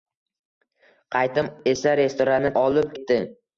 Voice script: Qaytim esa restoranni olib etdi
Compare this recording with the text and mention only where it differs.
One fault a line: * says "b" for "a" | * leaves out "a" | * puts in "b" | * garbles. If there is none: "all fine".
all fine